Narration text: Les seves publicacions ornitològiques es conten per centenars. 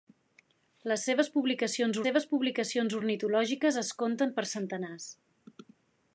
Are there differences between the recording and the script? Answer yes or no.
yes